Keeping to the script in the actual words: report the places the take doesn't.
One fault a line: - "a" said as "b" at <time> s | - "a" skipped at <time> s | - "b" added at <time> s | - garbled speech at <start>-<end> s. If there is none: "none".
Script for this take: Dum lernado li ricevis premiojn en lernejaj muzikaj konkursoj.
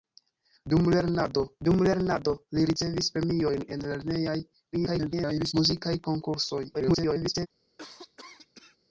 - "dum lernado" added at 1.7 s
- garbled speech at 4.7-5.5 s
- garbled speech at 6.7-7.5 s